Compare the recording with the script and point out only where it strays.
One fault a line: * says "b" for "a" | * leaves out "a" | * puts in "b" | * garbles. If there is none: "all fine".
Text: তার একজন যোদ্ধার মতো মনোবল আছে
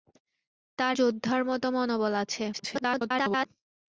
* leaves out "একজন"
* garbles